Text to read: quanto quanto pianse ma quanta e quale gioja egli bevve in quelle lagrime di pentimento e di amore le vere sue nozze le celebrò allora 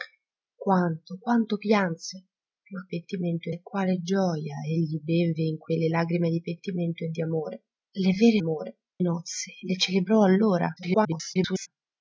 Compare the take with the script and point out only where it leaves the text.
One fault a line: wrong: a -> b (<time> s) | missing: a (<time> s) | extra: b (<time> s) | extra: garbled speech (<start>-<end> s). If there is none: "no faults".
wrong: quanta -> pentimento (2.9 s)
wrong: sue -> amore (8.4 s)
extra: garbled speech (10.8-11.7 s)